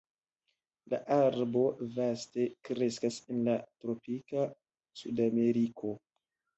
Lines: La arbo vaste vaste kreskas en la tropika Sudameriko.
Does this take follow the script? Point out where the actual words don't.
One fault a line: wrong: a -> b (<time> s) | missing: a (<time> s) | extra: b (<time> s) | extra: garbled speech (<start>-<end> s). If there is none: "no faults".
missing: vaste (2.5 s)